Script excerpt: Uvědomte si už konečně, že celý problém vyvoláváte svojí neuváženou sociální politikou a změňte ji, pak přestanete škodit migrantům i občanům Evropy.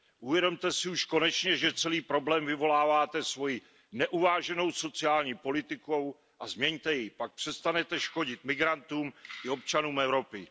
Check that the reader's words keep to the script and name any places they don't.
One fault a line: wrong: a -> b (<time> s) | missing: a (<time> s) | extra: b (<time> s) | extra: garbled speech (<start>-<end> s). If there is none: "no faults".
no faults